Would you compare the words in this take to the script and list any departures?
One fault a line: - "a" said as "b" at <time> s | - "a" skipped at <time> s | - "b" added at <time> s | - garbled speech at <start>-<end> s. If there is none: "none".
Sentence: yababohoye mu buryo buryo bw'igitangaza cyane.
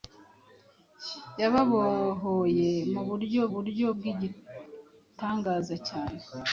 none